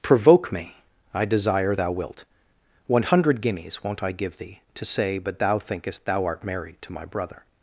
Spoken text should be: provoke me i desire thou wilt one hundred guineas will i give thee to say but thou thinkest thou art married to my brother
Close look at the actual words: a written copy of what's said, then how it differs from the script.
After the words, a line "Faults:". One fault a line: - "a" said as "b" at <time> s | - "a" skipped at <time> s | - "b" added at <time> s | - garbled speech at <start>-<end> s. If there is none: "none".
provoke me i desire thou wilt one hundred guineas won't i give thee to say but thou thinkest thou art married to my brother
Faults:
- "will" said as "won't" at 3.8 s